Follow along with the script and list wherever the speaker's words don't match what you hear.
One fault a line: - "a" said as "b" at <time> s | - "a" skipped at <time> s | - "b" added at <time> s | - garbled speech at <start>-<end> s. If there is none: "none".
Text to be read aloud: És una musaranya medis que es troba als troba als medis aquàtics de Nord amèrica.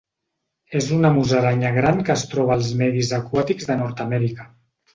- "medis" said as "gran" at 1.8 s
- "troba als" skipped at 2.7 s